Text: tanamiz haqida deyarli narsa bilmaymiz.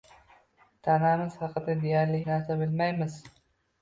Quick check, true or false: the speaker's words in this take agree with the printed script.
true